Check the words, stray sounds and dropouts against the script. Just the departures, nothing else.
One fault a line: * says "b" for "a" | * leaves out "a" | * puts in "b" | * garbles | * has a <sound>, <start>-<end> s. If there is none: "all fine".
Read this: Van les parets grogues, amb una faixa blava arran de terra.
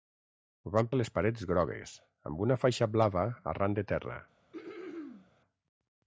* has a throat clearing, 4.5-5.3 s